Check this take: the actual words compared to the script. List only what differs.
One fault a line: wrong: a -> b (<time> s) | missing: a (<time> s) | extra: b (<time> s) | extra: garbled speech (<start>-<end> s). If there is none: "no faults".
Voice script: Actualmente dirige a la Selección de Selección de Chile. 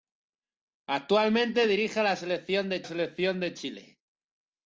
no faults